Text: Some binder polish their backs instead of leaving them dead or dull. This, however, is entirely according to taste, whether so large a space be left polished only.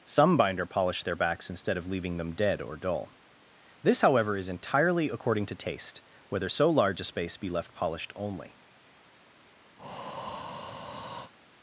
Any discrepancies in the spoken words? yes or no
no